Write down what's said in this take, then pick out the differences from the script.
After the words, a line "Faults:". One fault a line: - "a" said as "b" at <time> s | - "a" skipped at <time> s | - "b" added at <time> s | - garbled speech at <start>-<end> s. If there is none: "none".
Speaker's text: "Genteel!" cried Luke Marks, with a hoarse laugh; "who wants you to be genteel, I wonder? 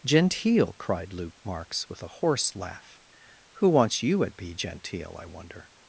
"Genteel!" cried Luke Marks, with a hoarse laugh; "who wants you at be genteel, I wonder?
Faults:
- "to" said as "at" at 4.2 s